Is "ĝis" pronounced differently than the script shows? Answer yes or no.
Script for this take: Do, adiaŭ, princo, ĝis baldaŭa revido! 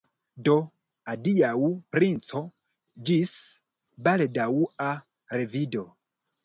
no